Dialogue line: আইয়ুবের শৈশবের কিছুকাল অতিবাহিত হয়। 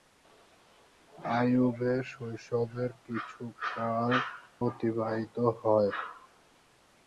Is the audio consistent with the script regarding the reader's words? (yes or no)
yes